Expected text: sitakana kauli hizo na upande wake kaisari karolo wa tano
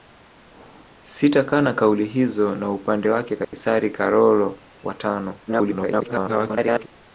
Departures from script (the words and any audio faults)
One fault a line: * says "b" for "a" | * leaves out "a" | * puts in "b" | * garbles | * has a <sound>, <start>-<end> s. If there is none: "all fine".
* has a dropout, 3.4-3.5 s
* garbles